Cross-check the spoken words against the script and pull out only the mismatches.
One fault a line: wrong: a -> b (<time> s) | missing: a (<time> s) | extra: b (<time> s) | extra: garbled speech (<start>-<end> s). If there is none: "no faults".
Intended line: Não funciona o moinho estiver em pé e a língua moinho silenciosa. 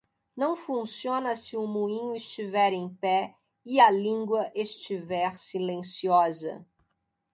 extra: se (1.4 s)
wrong: moinho -> estiver (4.5 s)